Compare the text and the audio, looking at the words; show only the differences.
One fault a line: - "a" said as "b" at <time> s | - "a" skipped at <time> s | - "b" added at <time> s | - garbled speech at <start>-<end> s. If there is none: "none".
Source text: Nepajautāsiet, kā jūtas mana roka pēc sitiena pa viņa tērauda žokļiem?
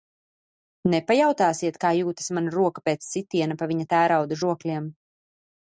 none